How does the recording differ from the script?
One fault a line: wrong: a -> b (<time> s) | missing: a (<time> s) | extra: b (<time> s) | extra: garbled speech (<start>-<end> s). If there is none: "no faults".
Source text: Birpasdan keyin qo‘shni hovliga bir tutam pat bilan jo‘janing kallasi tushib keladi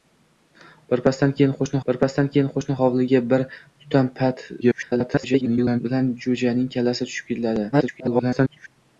extra: birpasdan keyin qo‘shni (1.9 s)
extra: garbled speech (4.6-5.8 s)
extra: garbled speech (7.7-8.7 s)